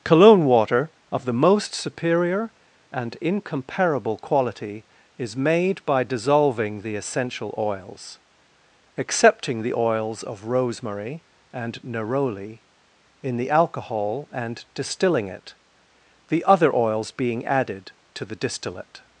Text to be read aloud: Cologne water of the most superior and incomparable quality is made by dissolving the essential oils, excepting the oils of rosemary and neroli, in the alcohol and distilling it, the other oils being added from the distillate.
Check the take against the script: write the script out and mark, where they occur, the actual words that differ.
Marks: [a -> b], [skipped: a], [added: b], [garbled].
Cologne water of the most superior and incomparable quality is made by dissolving the essential oils, excepting the oils of rosemary and neroli, in the alcohol and distilling it, the other oils being added [from -> to] the distillate.